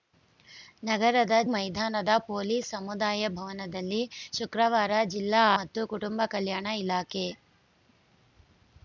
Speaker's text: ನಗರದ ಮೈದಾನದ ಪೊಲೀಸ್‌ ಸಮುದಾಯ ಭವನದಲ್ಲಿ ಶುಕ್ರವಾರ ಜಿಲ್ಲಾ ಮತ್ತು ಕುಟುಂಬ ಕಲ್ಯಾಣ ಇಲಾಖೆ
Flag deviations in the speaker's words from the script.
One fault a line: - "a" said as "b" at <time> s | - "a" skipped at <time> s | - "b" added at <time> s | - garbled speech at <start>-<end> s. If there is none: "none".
none